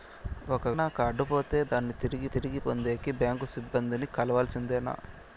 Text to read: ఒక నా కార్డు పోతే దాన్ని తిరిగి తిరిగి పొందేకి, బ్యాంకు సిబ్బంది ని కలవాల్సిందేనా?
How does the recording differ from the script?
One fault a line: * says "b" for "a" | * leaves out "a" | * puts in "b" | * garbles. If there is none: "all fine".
all fine